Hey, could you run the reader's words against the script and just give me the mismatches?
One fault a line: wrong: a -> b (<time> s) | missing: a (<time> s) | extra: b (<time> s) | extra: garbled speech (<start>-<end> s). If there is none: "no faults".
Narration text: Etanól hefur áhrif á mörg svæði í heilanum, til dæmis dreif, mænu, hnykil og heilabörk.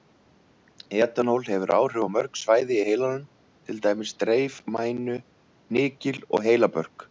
no faults